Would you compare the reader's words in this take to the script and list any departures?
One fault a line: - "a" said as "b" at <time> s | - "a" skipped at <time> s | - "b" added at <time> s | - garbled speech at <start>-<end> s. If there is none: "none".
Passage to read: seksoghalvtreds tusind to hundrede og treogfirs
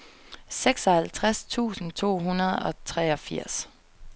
none